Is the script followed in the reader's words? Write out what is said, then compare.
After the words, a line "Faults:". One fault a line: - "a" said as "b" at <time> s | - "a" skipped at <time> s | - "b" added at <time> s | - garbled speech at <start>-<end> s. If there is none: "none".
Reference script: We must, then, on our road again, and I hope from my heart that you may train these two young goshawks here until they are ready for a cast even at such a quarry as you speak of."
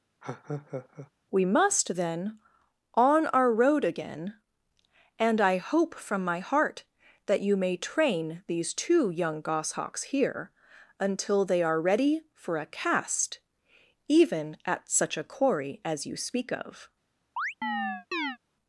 We must, then, on our road again, and I hope from my heart that you may train these two young goshawks here until they are ready for a cast even at such a quarry as you speak of."
Faults:
none